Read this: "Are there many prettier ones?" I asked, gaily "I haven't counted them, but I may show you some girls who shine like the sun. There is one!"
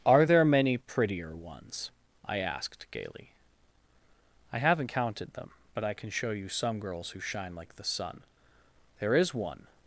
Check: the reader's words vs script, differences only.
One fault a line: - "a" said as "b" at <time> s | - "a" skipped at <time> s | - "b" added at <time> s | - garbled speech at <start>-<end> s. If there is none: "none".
- "may" said as "can" at 5.9 s